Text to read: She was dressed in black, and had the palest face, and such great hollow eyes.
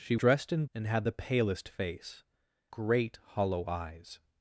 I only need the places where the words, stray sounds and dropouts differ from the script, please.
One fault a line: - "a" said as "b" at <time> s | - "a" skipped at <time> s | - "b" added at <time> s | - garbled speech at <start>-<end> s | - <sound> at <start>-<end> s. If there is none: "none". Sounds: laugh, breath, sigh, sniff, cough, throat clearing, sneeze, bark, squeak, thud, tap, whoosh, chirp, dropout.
- "was" skipped at 0.1 s
- "black" skipped at 0.7 s
- "and such" skipped at 2.2 s